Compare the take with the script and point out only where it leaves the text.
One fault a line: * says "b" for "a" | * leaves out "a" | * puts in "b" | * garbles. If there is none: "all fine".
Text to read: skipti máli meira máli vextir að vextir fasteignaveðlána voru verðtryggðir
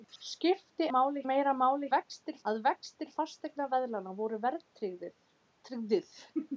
all fine